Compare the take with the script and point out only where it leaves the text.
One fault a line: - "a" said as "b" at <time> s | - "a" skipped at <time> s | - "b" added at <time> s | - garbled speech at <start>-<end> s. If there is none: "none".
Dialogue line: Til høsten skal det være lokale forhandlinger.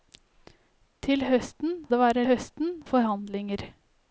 - "skal" skipped at 1.8 s
- "lokale" said as "høsten" at 2.2 s